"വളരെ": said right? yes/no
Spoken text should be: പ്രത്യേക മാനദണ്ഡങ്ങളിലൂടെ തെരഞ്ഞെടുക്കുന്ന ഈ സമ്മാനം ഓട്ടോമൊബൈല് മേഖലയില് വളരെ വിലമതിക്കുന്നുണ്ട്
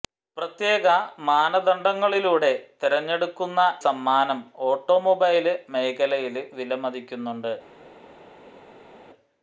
no